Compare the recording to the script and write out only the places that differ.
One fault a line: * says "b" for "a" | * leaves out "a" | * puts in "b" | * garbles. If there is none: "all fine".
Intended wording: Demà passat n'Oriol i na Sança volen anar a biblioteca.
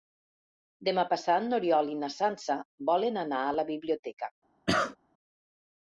* puts in "la"